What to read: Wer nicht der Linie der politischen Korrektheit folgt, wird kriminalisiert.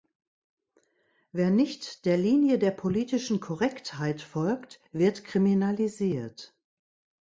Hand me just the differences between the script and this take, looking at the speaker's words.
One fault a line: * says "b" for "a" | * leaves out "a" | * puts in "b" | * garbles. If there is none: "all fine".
all fine